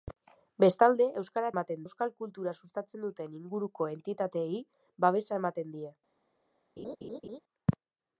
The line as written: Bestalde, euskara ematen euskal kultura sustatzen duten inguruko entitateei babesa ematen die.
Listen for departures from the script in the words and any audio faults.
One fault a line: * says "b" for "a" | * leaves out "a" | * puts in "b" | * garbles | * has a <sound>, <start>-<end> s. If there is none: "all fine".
* has a laugh, 6.8-7.4 s